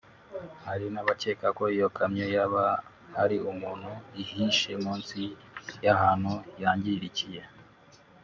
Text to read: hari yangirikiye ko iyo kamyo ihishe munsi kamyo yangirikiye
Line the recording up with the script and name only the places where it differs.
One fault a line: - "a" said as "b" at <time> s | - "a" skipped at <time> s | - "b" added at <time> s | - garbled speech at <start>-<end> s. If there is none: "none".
- "yangirikiye" said as "n'abakeka" at 0.9 s
- "yaba hari umuntu" added at 2.3 s
- "kamyo" said as "y'ahantu" at 5.8 s